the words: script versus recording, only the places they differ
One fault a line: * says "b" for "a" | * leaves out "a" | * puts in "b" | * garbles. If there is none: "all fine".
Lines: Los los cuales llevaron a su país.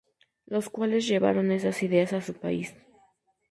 * leaves out "los"
* puts in "esas ideas"